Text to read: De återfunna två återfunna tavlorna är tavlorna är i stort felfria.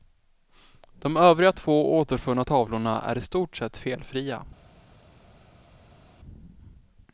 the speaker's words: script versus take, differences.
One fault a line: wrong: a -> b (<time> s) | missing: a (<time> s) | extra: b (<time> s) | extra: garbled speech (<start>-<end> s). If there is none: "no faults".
wrong: återfunna -> övriga (1.2 s)
missing: tavlorna är (3.2 s)
extra: sett (3.6 s)